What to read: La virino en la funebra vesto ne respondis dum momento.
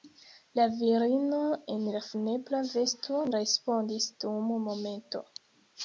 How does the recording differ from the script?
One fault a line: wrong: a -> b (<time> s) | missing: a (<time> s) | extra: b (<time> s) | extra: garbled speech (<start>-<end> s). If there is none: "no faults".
missing: ne (3.2 s)